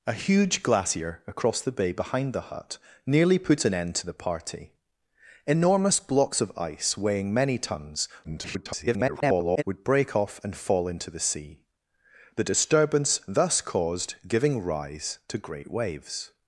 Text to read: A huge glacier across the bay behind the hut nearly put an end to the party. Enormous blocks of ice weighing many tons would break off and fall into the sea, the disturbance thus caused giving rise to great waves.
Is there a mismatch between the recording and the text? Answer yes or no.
yes